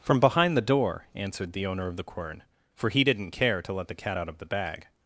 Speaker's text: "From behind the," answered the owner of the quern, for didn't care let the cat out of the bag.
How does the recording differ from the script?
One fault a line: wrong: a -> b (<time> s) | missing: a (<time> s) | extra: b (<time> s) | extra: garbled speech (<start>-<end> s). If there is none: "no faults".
extra: door (0.6 s)
extra: he (2.9 s)
extra: to (3.6 s)